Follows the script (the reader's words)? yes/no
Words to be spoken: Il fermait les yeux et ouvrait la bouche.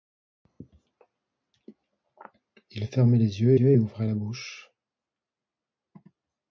no